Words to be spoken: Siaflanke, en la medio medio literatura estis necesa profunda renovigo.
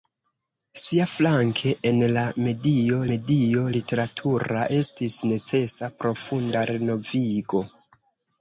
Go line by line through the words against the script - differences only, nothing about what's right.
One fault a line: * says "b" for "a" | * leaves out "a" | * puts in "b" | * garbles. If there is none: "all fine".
all fine